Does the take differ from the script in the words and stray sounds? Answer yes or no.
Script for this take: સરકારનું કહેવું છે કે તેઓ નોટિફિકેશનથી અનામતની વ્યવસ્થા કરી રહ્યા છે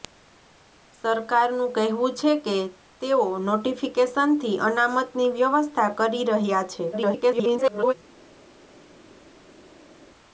yes